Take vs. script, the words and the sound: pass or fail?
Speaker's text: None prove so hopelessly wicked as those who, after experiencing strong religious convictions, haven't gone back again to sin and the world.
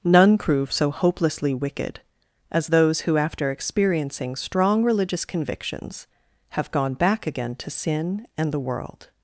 fail